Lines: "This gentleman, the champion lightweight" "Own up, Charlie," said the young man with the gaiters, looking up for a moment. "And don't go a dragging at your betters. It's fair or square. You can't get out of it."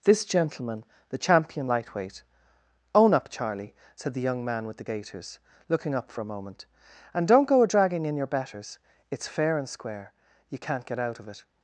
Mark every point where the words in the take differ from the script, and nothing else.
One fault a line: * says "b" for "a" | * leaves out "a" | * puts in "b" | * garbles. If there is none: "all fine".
* says "in" for "at"
* says "and" for "or"